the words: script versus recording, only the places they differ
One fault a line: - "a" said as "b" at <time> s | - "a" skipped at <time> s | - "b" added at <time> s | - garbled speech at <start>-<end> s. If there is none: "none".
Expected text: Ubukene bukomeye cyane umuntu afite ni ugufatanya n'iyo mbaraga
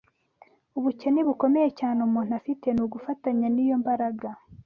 none